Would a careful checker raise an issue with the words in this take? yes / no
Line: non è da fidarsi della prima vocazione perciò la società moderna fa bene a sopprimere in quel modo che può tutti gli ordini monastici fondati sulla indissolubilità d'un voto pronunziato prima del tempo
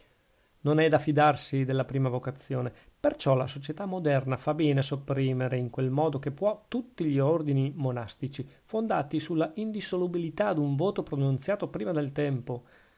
no